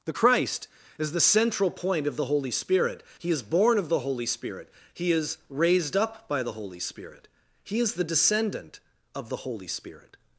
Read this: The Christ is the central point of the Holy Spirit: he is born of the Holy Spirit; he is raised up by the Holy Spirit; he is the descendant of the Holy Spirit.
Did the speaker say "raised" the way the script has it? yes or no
yes